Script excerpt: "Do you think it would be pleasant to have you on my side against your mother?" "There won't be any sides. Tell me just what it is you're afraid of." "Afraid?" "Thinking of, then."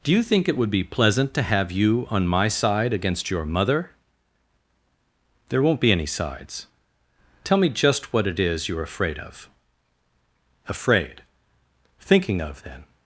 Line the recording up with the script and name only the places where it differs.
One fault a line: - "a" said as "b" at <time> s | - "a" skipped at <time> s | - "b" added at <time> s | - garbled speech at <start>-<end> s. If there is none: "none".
none